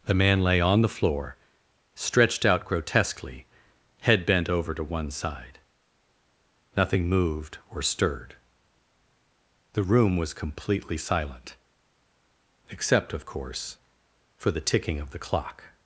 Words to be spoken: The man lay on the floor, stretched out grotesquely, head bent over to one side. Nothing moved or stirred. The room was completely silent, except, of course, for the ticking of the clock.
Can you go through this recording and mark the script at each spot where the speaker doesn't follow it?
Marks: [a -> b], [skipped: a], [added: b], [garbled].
The man lay on the floor, stretched out grotesquely, head bent over to one side. Nothing moved or stirred. The room was completely silent, except, of course, for the ticking of the clock.